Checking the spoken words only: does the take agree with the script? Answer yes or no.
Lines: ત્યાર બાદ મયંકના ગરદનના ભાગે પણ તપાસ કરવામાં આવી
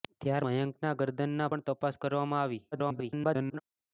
no